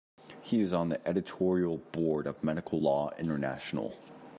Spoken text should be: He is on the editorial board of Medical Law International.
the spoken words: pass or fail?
pass